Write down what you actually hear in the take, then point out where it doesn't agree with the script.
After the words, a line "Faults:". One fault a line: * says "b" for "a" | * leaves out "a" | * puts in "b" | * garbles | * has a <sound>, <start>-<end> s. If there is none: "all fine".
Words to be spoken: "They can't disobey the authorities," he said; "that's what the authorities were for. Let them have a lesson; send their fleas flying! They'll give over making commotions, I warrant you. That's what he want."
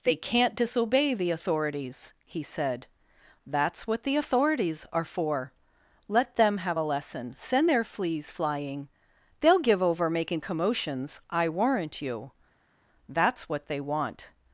"They can't disobey the authorities," he said; "that's what the authorities are for. Let them have a lesson; send their fleas flying! They'll give over making commotions, I warrant you. That's what they want."
Faults:
* says "are" for "were"
* says "they" for "he"